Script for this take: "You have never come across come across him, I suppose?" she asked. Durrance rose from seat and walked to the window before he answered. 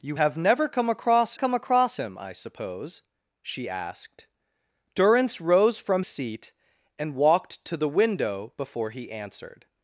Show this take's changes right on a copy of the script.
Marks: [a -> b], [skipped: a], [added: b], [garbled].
"You have never come across come across him, I suppose?" she asked. Durrance rose from seat and walked to the window before he answered.